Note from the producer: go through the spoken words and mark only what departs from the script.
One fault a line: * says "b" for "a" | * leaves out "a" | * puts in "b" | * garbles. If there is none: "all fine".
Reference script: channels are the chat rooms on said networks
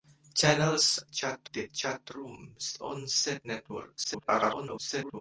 * says "chat" for "are"
* garbles